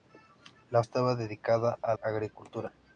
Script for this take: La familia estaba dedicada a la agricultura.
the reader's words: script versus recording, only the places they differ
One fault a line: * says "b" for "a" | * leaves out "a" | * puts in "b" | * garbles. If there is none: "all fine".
* leaves out "familia"
* leaves out "la"